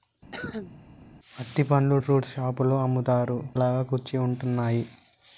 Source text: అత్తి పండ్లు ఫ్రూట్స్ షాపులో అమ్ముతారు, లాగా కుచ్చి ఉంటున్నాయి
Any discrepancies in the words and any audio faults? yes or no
yes